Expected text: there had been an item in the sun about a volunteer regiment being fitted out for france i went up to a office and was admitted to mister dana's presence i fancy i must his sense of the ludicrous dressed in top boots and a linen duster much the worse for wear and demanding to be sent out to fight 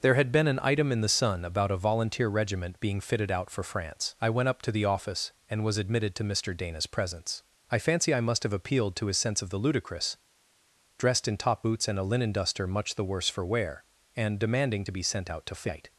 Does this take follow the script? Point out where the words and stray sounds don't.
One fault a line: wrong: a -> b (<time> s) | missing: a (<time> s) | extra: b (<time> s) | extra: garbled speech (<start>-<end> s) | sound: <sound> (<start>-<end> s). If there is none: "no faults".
wrong: a -> the (4.7 s)
extra: have appealed to (8.4 s)